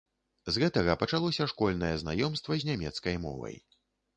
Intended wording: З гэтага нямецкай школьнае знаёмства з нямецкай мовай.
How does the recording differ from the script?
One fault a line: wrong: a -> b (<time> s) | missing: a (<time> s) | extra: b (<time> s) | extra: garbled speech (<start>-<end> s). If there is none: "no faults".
wrong: нямецкай -> пачалося (1.0 s)